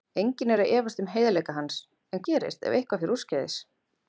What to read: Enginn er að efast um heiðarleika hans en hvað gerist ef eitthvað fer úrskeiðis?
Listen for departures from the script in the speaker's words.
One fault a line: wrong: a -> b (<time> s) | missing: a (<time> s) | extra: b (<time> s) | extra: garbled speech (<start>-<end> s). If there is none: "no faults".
missing: hvað (2.2 s)